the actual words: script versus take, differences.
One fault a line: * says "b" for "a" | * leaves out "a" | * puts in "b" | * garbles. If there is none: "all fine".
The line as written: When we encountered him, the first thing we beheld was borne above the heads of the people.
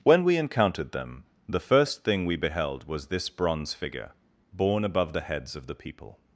* says "them" for "him"
* puts in "this bronze figure"